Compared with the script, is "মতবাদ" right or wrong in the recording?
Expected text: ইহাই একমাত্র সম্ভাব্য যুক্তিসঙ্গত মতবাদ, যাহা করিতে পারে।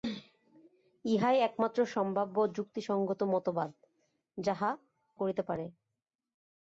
right